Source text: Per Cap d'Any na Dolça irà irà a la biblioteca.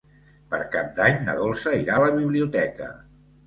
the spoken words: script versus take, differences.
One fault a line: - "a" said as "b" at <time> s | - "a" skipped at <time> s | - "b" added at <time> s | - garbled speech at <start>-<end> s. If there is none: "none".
- "irà" skipped at 2.0 s